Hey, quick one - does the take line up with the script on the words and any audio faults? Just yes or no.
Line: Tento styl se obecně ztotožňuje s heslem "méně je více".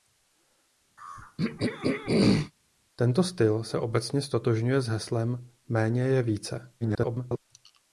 no